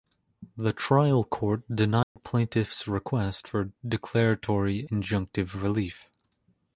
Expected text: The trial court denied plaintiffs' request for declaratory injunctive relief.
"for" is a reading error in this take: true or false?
false